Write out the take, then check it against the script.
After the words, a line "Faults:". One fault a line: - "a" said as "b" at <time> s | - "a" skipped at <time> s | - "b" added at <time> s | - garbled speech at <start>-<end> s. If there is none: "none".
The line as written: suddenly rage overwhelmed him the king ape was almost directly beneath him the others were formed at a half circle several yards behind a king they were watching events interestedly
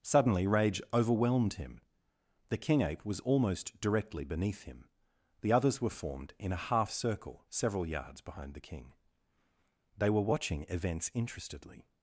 suddenly rage overwhelmed him the king ape was almost directly beneath him the others were formed in a half circle several yards behind the king they were watching events interestedly
Faults:
- "at" said as "in" at 6.4 s
- "a" said as "the" at 8.5 s